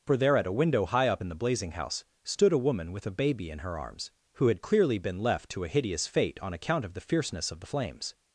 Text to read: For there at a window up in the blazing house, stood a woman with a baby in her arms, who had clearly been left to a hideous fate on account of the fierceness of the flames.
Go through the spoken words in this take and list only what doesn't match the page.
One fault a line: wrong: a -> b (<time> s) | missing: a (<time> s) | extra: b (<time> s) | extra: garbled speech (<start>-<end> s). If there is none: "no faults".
extra: high (0.9 s)